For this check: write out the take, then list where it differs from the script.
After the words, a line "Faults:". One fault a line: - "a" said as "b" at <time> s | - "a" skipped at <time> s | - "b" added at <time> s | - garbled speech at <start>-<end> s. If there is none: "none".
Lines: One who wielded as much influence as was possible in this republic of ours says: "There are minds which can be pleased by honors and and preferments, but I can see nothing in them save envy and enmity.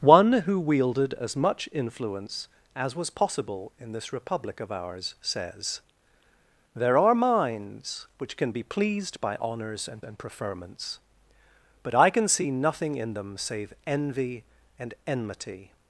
One who wielded as much influence as was possible in this republic of ours says: "There are minds which can be pleased by honors and and preferments, but I can see nothing in them save envy and enmity.
Faults:
none